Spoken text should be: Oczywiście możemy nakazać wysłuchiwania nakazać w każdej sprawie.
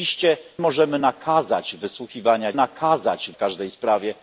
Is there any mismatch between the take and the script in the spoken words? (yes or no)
no